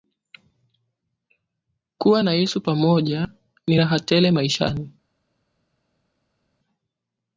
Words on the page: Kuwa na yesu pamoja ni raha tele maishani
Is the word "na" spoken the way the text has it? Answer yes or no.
yes